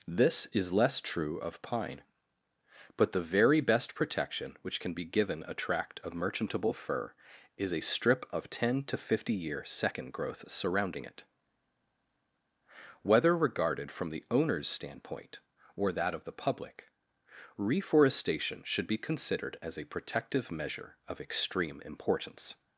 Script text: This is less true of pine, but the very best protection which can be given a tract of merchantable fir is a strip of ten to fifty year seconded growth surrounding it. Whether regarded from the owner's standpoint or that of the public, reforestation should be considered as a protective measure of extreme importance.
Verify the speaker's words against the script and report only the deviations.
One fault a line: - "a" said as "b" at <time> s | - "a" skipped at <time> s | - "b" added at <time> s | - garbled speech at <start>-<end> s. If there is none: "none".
- "seconded" said as "second" at 9.6 s